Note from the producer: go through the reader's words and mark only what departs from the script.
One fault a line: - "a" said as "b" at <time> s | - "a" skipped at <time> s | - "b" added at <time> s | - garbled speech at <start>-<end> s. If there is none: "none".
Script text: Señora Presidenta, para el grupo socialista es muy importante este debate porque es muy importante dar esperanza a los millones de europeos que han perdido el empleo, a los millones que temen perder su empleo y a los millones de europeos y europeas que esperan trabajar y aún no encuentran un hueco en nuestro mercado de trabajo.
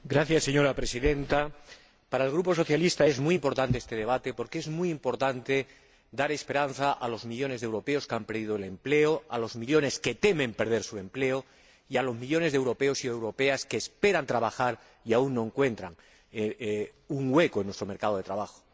none